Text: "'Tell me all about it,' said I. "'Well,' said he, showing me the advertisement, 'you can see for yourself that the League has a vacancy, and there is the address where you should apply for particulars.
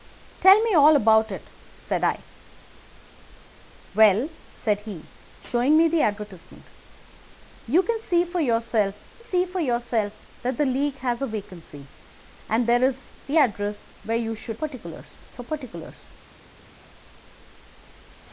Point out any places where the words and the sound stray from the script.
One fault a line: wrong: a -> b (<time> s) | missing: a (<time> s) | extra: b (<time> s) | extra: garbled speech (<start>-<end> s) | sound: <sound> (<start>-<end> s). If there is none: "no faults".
extra: see for yourself (9.2 s)
wrong: apply -> particulars (14.5 s)